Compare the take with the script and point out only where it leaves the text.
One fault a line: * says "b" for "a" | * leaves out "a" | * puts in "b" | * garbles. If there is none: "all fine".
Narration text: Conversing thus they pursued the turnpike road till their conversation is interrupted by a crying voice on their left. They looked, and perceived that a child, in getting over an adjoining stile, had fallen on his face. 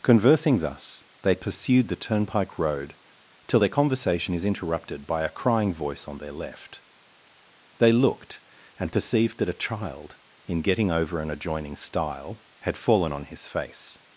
all fine